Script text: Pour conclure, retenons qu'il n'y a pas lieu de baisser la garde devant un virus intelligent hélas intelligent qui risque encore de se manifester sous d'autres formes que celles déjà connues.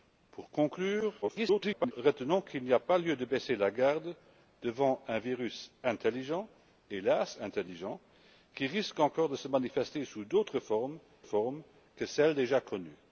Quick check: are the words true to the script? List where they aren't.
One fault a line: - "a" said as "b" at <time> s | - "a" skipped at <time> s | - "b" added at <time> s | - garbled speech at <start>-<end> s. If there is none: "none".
- garbled speech at 1.2-1.9 s
- "formes" added at 11.2 s